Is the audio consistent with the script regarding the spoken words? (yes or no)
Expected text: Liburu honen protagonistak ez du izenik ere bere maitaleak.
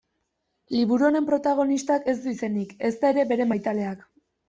no